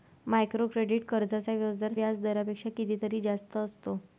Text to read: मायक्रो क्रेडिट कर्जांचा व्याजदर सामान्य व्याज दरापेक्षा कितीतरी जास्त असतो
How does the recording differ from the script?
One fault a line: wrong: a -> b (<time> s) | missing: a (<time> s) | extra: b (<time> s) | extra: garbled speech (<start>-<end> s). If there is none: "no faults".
missing: सामान्य (1.9 s)